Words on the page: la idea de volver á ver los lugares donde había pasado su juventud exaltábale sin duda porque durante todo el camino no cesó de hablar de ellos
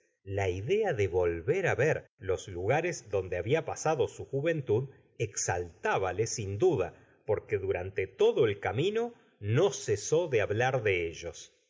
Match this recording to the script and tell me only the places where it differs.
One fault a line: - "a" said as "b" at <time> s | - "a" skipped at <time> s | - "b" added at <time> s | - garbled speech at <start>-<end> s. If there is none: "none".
none